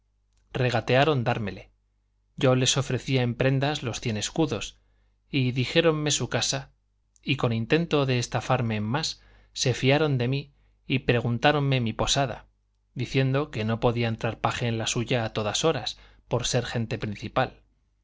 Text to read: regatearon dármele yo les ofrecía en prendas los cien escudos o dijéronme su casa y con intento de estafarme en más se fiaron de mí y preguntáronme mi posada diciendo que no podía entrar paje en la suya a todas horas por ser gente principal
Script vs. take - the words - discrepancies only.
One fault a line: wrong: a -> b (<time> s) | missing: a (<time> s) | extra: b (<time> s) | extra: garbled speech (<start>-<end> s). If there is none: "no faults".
wrong: o -> y (5.3 s)